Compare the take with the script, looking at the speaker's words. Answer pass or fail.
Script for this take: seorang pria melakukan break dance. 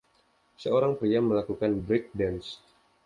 pass